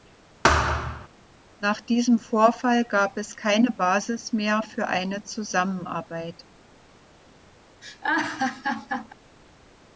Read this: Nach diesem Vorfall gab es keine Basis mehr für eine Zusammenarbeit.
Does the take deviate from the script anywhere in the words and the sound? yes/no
yes